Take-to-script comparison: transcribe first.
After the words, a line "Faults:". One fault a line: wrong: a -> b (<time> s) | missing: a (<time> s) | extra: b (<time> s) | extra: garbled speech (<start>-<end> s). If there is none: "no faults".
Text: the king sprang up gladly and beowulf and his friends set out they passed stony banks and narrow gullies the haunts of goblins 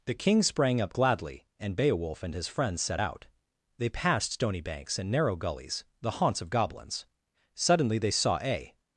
the king sprang up gladly and beowulf and his friends set out they passed stony banks and narrow gullies the haunts of goblins suddenly they saw a
Faults:
extra: suddenly they saw a (7.6 s)